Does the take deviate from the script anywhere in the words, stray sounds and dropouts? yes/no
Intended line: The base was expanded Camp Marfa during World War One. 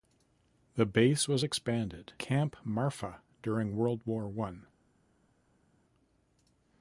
no